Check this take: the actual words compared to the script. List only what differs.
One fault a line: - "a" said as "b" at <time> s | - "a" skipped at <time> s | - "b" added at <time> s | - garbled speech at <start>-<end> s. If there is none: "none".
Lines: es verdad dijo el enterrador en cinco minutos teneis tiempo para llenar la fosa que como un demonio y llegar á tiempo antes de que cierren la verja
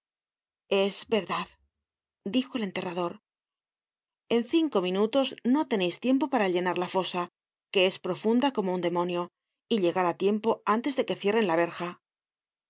- "no" added at 5.4 s
- "es profunda" added at 7.9 s